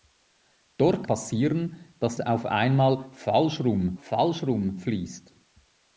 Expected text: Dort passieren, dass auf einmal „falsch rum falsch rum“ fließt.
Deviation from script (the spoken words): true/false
false